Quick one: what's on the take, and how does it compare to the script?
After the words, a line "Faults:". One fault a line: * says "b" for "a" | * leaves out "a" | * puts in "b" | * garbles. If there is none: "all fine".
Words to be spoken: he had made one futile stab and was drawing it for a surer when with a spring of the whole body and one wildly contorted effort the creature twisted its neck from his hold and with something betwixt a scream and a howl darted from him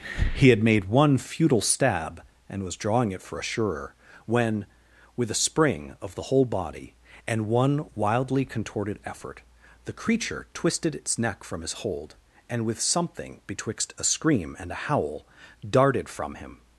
he had made one futile stab and was drawing it for a surer when with a spring of the whole body and one wildly contorted effort the creature twisted its neck from his hold and with something betwixt a scream and a howl darted from him
Faults:
all fine